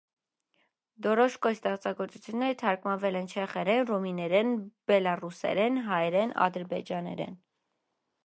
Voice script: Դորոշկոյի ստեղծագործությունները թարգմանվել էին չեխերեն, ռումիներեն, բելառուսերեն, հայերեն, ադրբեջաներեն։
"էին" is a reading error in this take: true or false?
true